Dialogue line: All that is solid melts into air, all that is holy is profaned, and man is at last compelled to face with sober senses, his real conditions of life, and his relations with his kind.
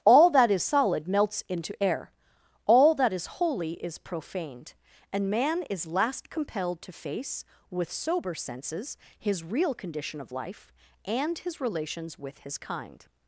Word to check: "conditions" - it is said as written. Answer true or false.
false